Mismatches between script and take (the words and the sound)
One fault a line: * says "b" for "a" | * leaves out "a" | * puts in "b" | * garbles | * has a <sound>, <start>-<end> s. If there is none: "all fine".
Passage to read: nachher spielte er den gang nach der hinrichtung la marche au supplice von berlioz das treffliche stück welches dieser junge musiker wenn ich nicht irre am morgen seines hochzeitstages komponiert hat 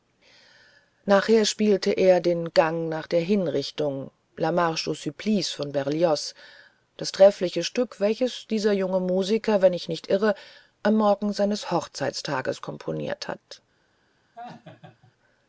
* has a laugh, 14.4-15.1 s